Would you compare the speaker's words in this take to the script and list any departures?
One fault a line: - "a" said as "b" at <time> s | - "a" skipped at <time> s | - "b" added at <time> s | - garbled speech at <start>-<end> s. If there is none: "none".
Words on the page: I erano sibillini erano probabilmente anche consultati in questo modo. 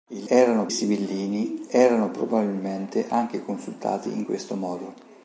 none